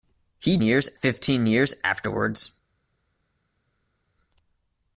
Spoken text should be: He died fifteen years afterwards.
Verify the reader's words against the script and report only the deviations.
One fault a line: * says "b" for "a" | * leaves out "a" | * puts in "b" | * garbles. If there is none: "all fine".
* says "years" for "died"